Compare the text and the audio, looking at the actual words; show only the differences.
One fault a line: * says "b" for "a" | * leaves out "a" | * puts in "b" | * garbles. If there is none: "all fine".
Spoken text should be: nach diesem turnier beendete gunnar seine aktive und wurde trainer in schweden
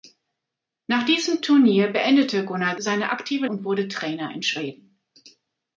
all fine